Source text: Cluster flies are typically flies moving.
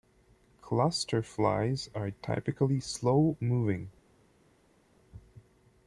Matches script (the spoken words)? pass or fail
fail